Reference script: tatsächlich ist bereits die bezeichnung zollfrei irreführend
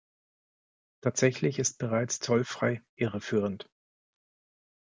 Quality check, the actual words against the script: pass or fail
fail